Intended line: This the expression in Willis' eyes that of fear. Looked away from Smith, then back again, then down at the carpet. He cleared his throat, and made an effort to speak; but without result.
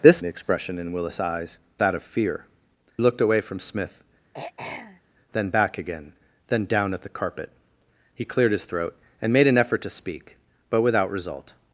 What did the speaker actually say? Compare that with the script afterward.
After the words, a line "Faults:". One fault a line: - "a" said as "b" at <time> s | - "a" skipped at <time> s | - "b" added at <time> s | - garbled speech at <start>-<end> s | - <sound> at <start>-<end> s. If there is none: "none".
This the expression in Willis' eyes that of fear. Looked away from Smith, then back again, then down at the carpet. He cleared his throat, and made an effort to speak; but without result.
Faults:
- throat clearing at 4.3-5.0 s